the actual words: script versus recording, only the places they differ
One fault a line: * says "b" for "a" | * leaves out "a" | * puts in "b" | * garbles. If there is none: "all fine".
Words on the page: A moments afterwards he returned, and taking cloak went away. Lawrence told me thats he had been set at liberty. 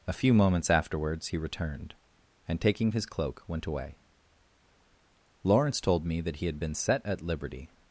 * puts in "few"
* puts in "his"
* says "that" for "thats"